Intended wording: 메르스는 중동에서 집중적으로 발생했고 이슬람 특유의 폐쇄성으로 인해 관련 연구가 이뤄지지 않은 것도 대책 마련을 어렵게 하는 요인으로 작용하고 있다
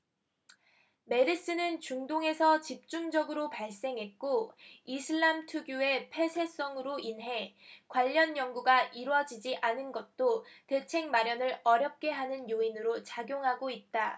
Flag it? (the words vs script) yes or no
no